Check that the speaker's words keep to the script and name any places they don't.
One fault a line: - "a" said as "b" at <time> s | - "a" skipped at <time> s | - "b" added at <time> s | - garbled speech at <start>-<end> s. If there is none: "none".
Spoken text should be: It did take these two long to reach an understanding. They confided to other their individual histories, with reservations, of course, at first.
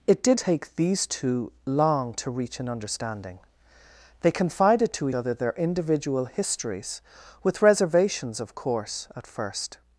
none